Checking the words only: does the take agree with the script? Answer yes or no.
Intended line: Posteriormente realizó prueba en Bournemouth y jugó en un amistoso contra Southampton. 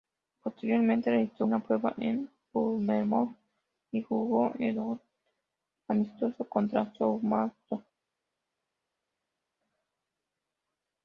no